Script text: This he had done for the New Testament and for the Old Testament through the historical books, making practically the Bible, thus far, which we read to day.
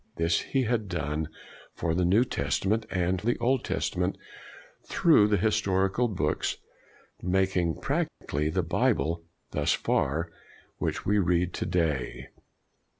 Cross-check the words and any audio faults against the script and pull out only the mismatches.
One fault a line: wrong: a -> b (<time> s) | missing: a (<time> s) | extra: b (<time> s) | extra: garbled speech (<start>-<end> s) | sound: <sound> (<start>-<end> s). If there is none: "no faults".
missing: for (3.2 s)
sound: dropout (8.1-8.2 s)